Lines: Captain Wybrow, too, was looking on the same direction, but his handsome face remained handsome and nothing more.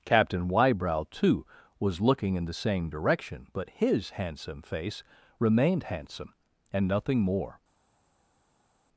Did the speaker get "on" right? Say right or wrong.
wrong